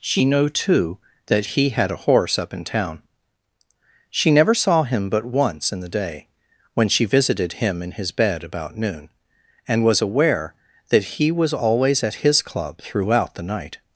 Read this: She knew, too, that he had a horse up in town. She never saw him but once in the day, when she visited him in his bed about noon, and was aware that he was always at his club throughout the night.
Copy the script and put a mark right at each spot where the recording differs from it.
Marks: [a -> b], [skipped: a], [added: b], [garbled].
She knew, too, that he had a horse up in town. She never saw him but once in the day, when she visited him in his bed about noon, and was aware that he was always at his club throughout the night.